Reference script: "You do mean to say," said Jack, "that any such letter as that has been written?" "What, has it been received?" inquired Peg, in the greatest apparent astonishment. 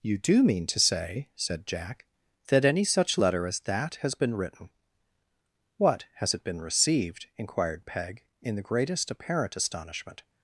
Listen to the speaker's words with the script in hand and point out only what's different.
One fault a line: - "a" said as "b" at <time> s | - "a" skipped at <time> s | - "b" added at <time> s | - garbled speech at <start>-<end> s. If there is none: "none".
none